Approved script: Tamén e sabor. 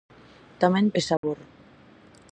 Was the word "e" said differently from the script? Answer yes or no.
no